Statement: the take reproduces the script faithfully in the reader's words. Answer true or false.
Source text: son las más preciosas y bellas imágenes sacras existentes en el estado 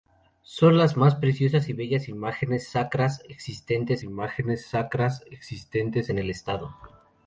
false